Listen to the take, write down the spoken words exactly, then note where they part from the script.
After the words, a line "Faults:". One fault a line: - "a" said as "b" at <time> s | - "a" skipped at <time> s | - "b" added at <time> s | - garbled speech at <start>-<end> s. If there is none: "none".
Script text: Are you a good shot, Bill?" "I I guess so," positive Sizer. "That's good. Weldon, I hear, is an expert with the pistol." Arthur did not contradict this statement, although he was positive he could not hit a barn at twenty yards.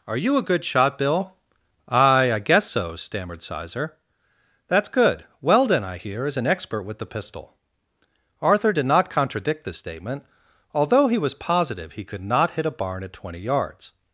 Are you a good shot, Bill?" "I I guess so," stammered Sizer. "That's good. Weldon, I hear, is an expert with the pistol." Arthur did not contradict this statement, although he was positive he could not hit a barn at twenty yards.
Faults:
- "positive" said as "stammered" at 2.9 s